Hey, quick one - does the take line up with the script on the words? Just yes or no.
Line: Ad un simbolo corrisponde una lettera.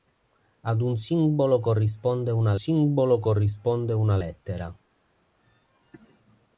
no